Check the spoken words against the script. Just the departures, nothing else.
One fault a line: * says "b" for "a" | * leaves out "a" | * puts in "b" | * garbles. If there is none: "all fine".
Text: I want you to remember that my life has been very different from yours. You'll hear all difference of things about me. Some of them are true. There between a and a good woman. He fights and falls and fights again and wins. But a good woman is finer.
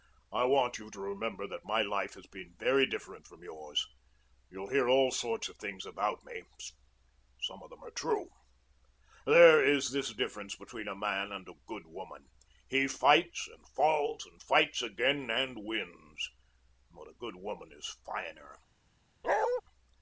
* says "sorts" for "difference"
* puts in "is this difference"
* puts in "man"